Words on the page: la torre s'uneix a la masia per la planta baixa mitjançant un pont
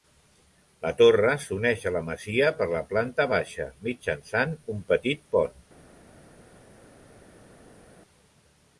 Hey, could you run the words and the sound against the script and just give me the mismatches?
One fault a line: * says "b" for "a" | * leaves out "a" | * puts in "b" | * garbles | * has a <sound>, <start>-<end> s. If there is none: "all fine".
* puts in "petit"